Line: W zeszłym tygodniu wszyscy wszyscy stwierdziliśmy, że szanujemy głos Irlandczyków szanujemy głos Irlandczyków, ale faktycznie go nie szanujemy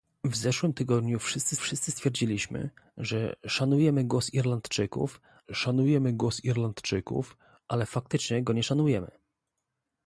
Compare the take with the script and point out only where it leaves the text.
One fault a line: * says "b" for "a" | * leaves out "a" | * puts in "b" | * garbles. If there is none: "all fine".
all fine